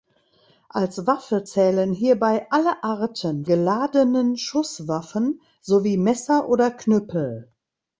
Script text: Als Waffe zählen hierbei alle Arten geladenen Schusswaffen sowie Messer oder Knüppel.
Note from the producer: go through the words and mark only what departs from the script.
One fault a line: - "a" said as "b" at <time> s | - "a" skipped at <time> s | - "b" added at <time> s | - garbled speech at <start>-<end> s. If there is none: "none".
none